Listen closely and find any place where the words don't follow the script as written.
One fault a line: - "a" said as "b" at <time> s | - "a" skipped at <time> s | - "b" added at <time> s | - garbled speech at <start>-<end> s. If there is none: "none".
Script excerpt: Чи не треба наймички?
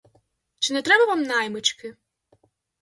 - "вам" added at 1.0 s